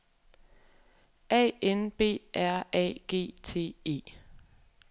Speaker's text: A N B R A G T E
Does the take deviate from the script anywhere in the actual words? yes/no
no